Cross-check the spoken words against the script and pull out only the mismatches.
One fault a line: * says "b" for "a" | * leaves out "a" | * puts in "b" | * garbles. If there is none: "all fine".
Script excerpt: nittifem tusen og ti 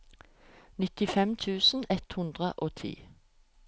* puts in "ett hundre"